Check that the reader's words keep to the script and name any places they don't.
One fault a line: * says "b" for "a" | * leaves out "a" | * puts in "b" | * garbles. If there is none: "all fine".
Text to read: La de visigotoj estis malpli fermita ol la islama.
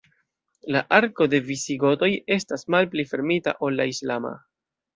* puts in "arko"
* says "estas" for "estis"